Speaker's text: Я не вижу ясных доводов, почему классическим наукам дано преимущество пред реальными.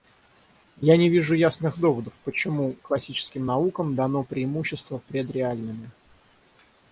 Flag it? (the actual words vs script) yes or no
no